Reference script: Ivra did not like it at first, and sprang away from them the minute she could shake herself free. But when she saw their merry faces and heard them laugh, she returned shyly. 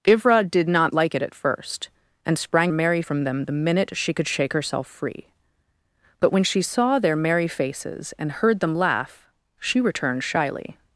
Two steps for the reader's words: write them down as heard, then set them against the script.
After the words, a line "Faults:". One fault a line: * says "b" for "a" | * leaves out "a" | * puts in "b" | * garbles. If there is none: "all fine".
Ivra did not like it at first, and sprang merry from them the minute she could shake herself free. But when she saw their merry faces and heard them laugh, she returned shyly.
Faults:
* says "merry" for "away"